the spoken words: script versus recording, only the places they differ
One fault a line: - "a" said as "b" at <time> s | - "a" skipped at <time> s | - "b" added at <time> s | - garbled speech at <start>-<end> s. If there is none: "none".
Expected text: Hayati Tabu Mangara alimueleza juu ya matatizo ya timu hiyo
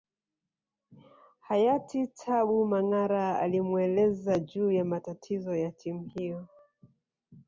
none